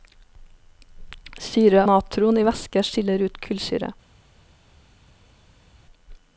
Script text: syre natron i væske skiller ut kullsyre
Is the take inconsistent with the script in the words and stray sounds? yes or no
no